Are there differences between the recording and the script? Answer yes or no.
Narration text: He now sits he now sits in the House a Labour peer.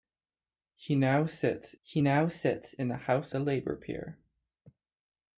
no